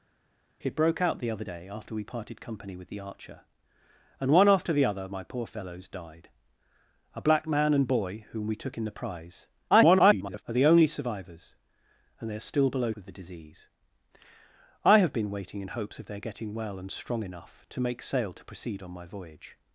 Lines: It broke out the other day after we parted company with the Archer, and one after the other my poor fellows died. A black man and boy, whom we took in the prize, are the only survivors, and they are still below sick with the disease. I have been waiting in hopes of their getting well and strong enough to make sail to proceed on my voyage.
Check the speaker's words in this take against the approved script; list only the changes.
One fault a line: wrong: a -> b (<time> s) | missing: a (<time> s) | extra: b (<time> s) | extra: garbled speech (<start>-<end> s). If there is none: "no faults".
extra: garbled speech (9.7-10.4 s)
missing: sick (12.9 s)